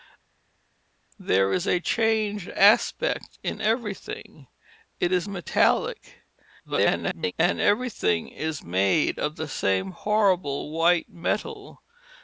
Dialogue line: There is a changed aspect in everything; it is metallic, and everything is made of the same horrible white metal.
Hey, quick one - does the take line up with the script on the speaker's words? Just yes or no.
no